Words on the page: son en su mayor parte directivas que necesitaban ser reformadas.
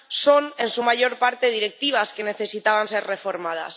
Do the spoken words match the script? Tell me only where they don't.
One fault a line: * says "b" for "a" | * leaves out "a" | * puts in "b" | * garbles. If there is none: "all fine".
all fine